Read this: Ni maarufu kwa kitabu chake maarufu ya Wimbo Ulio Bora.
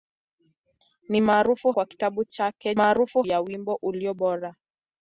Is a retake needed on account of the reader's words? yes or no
no